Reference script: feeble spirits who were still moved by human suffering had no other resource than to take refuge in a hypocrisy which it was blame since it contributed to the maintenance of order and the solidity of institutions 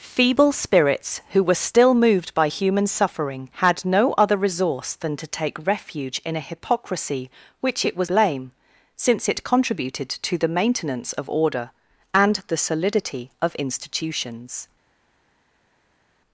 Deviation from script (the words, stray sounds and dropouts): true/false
false